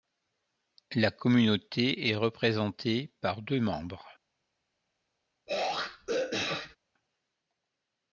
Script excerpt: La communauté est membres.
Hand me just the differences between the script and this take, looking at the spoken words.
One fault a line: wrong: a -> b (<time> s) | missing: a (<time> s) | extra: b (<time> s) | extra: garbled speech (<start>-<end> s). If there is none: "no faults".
extra: représentée par deux (2.1 s)